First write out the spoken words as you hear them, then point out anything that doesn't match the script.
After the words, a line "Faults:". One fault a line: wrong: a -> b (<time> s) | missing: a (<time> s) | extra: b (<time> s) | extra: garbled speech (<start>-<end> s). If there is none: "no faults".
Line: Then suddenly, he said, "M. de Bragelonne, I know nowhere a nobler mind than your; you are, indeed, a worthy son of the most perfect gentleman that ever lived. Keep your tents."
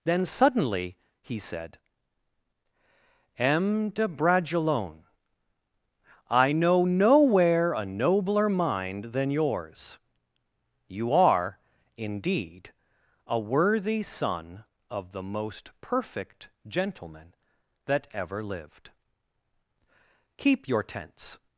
Then suddenly, he said, "M. de Bragelonne, I know nowhere a nobler mind than yours; you are, indeed, a worthy son of the most perfect gentleman that ever lived. Keep your tents."
Faults:
wrong: your -> yours (9.3 s)